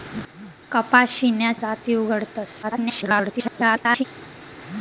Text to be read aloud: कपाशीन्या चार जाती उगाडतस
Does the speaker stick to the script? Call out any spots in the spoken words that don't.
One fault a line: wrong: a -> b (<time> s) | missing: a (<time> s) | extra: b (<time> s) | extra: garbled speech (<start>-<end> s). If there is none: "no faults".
missing: चार (1.5 s)
extra: garbled speech (2.6-4.0 s)